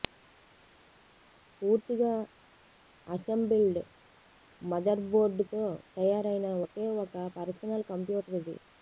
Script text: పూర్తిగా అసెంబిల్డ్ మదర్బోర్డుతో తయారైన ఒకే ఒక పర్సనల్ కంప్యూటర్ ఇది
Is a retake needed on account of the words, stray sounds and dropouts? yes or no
no